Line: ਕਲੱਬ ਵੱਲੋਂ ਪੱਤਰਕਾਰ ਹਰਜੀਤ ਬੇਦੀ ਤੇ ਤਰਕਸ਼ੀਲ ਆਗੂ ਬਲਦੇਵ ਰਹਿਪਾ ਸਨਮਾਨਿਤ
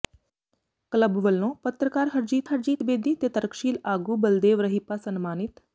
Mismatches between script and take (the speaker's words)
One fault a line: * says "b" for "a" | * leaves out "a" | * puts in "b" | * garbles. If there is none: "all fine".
* puts in "ਹਰਜੀਤ"